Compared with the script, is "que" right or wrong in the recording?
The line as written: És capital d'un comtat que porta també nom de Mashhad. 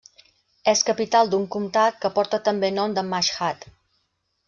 right